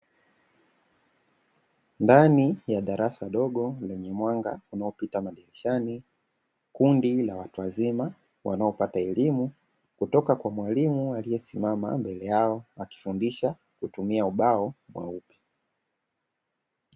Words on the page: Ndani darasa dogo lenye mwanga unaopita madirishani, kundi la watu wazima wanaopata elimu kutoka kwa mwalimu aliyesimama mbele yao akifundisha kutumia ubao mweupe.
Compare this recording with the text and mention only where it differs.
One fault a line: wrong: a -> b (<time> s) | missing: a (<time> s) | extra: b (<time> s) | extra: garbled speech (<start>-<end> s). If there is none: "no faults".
extra: ya (2.7 s)